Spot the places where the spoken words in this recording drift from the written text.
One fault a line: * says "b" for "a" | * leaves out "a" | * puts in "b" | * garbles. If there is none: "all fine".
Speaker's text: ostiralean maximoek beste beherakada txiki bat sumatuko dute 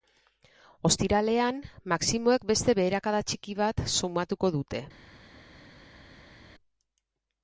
all fine